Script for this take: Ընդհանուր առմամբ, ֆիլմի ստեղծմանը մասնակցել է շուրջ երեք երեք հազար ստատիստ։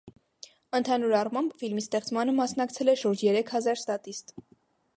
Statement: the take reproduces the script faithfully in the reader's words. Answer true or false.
false